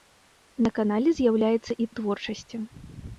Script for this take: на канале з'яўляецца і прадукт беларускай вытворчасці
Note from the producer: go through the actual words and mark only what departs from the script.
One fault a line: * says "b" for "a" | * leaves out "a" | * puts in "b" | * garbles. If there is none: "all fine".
* leaves out "прадукт беларускай"